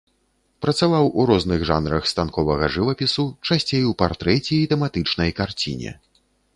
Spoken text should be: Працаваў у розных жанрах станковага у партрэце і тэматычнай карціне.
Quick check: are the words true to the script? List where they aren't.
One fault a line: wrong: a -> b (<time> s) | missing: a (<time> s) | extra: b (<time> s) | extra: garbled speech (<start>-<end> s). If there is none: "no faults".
extra: жывапісу часцей (2.8 s)